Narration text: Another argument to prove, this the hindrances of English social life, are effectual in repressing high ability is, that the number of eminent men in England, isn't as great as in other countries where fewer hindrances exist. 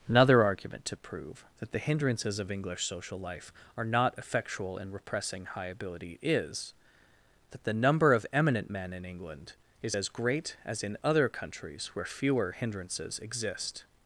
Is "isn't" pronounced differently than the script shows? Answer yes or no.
yes